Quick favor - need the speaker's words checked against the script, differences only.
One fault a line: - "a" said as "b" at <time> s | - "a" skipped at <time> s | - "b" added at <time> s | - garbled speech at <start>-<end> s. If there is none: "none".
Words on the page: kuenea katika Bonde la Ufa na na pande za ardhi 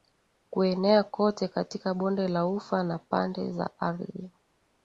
- "kote" added at 1.0 s
- "na" skipped at 3.0 s